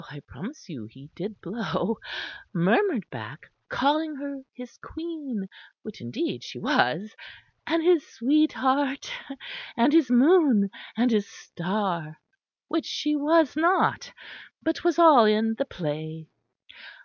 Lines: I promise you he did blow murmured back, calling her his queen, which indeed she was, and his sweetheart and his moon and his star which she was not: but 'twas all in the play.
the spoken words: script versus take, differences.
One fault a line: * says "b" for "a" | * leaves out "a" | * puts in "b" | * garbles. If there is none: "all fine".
all fine